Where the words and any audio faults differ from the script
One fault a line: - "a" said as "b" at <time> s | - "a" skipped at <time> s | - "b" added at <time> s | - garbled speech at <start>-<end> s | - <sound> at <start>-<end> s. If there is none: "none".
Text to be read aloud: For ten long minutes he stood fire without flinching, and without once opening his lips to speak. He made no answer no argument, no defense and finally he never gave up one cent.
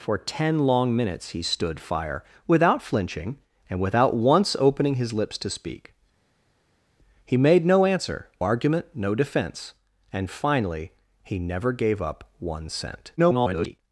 - "no" skipped at 8.3 s
- garbled speech at 13.2-13.8 s